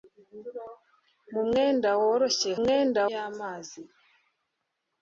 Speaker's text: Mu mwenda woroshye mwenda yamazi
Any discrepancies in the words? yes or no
no